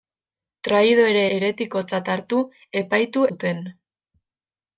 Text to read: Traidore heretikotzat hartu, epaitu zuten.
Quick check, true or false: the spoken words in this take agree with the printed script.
true